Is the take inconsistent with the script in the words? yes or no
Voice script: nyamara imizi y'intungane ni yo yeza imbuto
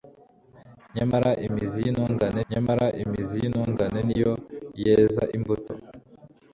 yes